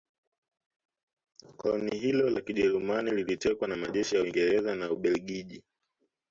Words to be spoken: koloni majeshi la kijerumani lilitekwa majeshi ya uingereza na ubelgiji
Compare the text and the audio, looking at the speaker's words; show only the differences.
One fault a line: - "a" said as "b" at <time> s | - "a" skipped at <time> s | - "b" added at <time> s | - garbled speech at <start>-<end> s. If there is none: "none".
- "majeshi" said as "hilo" at 2.0 s
- "na" added at 3.7 s